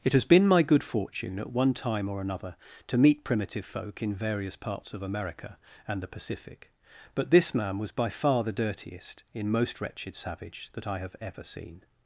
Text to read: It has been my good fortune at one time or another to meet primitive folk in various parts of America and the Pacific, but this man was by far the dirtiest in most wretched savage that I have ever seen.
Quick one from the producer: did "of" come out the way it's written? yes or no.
yes